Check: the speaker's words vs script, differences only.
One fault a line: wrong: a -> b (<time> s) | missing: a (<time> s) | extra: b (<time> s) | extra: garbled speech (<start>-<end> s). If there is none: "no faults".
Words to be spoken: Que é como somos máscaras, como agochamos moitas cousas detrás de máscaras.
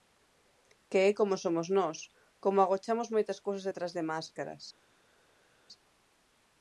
wrong: máscaras -> nós (1.8 s)